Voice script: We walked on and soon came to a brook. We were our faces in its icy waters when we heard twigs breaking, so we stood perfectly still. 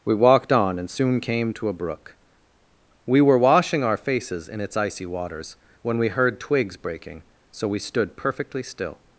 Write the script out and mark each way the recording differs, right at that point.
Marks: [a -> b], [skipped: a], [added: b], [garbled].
We walked on and soon came to a brook. We were [added: washing] our faces in its icy waters when we heard twigs breaking, so we stood perfectly still.